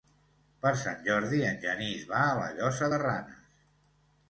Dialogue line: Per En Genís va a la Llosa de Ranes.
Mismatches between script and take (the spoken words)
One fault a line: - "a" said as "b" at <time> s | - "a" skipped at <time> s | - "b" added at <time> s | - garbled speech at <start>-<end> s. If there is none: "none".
- "Sant Jordi" added at 0.8 s